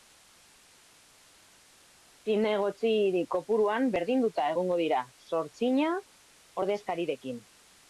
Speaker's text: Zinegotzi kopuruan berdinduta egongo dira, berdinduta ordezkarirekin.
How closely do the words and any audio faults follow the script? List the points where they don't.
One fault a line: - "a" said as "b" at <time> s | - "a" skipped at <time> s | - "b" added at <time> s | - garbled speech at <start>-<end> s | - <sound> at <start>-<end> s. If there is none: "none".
- "berdinduta" said as "zortzina" at 5.3 s